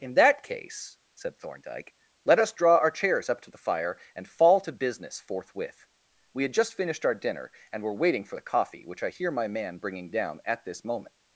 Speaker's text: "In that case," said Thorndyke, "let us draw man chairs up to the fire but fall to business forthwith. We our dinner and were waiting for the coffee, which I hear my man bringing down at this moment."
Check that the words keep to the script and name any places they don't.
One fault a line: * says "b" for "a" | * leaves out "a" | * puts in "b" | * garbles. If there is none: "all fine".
* says "our" for "man"
* says "and" for "but"
* puts in "had just finished"